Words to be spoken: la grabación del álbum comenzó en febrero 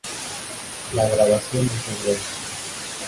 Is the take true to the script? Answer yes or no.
no